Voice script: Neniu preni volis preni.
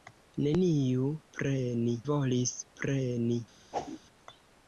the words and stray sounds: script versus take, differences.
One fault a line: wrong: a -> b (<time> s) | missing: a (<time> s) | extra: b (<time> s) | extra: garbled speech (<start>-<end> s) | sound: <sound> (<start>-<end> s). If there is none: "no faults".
sound: whoosh (3.7-4.0 s)